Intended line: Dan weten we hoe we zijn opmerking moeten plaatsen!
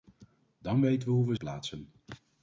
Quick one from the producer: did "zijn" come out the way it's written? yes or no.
no